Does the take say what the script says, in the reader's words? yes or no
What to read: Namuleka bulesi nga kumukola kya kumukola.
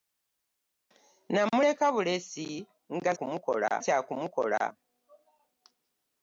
yes